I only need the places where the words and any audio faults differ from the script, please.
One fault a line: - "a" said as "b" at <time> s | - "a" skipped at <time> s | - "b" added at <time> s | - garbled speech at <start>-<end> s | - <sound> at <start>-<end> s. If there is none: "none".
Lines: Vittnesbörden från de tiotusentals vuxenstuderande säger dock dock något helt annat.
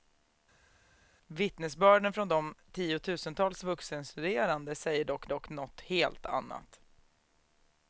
none